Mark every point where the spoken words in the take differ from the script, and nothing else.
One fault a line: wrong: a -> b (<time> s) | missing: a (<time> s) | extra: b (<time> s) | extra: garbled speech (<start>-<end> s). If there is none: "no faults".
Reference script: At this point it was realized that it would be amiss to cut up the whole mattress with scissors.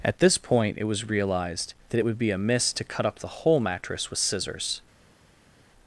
no faults